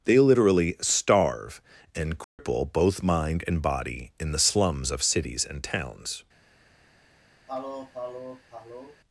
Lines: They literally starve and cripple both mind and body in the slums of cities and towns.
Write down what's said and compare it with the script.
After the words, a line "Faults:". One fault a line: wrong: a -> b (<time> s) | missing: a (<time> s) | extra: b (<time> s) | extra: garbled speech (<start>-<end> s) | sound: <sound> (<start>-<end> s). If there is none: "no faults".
They literally starve and cripple both mind and body in the slums of cities and towns.
Faults:
sound: dropout (2.2-2.4 s)
sound: sniff (7.5-9.0 s)